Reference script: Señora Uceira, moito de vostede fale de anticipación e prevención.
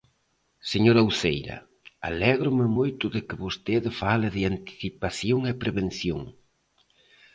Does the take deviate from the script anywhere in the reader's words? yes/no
yes